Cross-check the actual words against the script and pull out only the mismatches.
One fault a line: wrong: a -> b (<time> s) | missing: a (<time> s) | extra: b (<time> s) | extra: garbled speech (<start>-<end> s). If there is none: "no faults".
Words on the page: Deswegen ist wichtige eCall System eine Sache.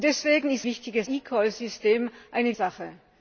no faults